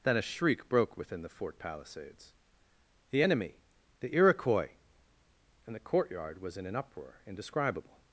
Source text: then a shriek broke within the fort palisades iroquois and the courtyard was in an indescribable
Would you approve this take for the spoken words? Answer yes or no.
no